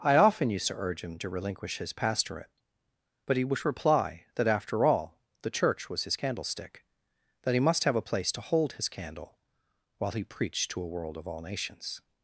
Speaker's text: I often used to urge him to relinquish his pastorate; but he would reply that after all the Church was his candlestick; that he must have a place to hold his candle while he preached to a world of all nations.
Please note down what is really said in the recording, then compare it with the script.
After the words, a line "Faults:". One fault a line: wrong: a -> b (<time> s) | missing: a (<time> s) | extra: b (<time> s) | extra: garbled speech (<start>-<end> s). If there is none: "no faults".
I often used to urge him to relinquish his pastorate; but he would reply that after all the Church was his candlestick; that he must have a place to hold his candle while he preached to a world of all nations.
Faults:
no faults